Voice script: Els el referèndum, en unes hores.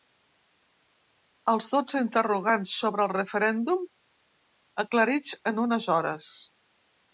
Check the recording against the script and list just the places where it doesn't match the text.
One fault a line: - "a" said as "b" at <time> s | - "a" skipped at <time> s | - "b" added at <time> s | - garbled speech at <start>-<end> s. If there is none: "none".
- "dotze interrogants sobre" added at 1.8 s
- "aclarits" added at 4.9 s